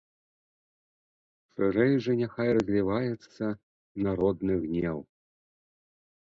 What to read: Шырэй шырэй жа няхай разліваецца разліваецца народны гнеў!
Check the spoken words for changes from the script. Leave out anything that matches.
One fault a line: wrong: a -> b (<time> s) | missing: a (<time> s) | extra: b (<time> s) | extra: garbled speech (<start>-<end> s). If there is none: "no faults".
missing: шырэй (1.9 s)
missing: разліваецца (3.4 s)